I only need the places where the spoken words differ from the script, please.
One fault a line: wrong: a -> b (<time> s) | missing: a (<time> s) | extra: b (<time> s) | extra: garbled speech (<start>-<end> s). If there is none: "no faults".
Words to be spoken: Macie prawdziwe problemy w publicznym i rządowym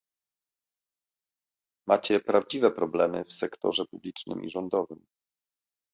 extra: sektorze (3.3 s)